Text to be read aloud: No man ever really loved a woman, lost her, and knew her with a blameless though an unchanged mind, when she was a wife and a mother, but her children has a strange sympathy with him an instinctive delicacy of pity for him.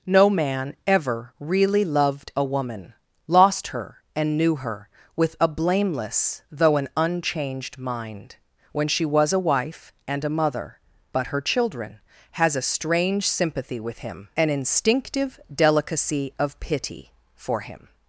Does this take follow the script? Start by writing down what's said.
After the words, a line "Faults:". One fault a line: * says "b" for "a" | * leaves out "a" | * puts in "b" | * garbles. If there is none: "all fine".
No man ever really loved a woman, lost her, and knew her with a blameless though an unchanged mind, when she was a wife and a mother, but her children has a strange sympathy with him an instinctive delicacy of pity for him.
Faults:
all fine